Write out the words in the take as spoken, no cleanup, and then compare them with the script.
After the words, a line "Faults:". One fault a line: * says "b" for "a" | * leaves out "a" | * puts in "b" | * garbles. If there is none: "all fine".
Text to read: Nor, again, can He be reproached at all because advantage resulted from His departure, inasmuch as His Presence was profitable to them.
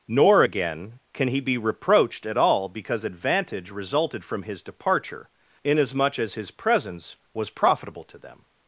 Nor, again, can He be reproached at all because advantage resulted from His departure, inasmuch as His Presence was profitable to them.
Faults:
all fine